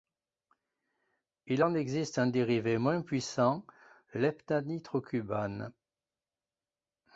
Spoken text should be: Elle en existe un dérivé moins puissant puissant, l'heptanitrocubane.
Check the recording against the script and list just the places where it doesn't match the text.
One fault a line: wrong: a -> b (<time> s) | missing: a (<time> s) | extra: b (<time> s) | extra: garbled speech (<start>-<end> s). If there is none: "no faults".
wrong: Elle -> Il (1.4 s)
missing: puissant (3.6 s)